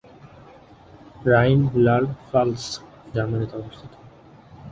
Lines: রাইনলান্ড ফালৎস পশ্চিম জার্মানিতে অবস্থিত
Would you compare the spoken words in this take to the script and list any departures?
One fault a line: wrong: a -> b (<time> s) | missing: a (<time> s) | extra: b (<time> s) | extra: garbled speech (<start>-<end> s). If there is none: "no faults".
missing: পশ্চিম (2.6 s)